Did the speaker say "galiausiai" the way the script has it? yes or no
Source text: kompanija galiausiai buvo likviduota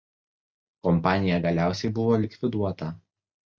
yes